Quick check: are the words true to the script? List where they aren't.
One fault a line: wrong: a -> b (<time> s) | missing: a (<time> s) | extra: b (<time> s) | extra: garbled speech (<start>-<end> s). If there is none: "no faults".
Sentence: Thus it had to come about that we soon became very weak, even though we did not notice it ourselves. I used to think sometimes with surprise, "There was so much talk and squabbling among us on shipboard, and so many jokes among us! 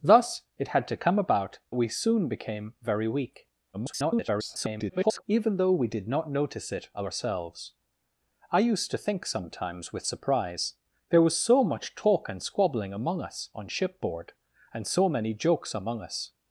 missing: that (1.6 s)
extra: garbled speech (3.7-5.2 s)